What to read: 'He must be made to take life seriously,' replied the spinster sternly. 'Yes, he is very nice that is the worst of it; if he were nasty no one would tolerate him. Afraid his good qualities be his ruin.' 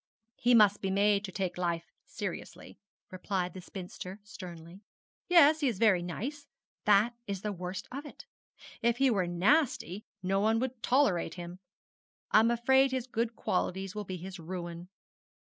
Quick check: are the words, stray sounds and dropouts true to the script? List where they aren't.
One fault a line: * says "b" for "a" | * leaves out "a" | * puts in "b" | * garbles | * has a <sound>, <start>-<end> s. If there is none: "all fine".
* puts in "I'm"
* puts in "will"